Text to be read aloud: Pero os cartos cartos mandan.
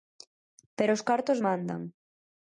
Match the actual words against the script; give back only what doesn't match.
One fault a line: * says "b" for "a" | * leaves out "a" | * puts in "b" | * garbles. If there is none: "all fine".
* leaves out "cartos"